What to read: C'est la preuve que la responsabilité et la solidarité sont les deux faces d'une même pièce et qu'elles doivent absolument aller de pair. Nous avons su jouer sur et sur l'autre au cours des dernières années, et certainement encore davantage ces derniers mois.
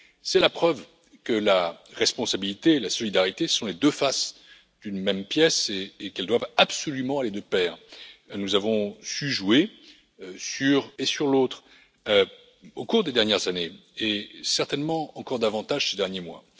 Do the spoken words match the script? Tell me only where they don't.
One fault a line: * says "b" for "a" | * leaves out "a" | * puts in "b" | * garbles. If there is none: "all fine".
all fine